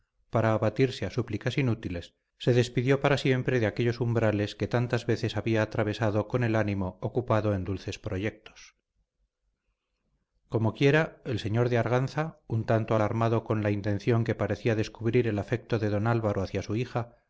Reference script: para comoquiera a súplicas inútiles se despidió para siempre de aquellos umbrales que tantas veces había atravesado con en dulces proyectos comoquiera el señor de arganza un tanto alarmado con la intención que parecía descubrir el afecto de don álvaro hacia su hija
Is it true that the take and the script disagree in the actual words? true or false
true